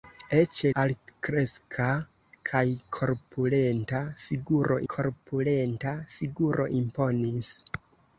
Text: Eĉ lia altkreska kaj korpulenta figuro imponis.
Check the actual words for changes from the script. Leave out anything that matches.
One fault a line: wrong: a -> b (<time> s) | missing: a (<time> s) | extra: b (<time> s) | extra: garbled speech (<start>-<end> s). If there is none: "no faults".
missing: lia (0.6 s)
extra: korpulenta figuro (4.9 s)